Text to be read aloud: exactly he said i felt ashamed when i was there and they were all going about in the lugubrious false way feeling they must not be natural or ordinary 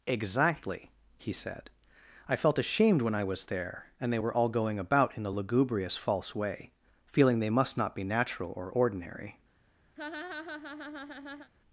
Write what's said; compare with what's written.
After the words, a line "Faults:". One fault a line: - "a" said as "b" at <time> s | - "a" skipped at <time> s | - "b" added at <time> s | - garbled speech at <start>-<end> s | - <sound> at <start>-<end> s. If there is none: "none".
exactly he said i felt ashamed when i was there and they were all going about in the lugubrious false way feeling they must not be natural or ordinary
Faults:
- laugh at 10.0-11.5 s